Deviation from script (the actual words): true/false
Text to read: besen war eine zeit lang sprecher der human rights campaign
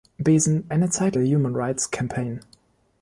true